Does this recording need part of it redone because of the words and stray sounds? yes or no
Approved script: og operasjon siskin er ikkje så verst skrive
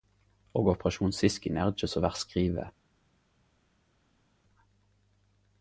no